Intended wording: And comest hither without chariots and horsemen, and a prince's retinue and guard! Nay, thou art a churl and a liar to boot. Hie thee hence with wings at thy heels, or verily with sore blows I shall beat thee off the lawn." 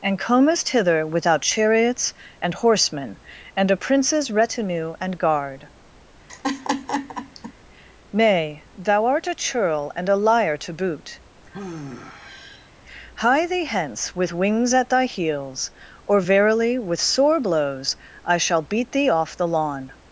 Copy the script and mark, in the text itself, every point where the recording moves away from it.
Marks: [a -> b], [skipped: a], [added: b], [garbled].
And comest hither without chariots and horsemen, and a prince's retinue and guard! Nay, thou art a churl and a liar to boot. Hie thee hence with wings at thy heels, or verily with sore blows I shall beat thee off the lawn."